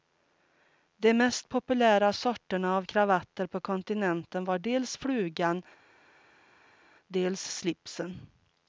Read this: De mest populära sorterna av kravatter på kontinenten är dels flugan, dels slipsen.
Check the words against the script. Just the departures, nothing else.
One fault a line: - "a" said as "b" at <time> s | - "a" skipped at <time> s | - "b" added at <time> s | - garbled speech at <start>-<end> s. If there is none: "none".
- "är" said as "var" at 4.4 s